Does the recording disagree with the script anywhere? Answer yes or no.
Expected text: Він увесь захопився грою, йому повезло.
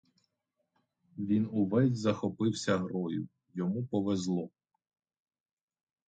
no